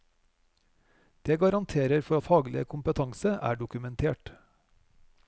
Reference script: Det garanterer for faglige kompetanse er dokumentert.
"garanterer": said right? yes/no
yes